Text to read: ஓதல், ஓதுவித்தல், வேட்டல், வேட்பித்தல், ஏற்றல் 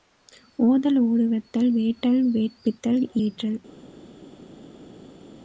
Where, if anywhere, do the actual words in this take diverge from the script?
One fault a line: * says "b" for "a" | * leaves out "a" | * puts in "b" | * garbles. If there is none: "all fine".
all fine